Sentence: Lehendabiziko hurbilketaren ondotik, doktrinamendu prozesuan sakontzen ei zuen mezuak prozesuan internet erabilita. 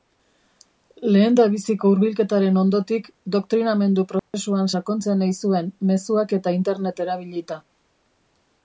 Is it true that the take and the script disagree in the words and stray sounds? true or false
true